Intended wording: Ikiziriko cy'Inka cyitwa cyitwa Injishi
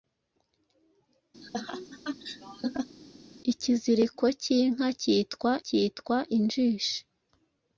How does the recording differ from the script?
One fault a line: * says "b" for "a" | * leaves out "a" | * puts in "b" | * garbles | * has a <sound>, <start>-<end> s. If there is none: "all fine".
* has a laugh, 1.4-3.0 s